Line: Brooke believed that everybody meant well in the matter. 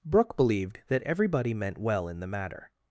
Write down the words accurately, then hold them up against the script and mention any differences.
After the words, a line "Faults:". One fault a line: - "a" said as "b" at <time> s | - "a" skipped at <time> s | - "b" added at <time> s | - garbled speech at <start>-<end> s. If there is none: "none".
Brooke believed that everybody meant well in the matter.
Faults:
none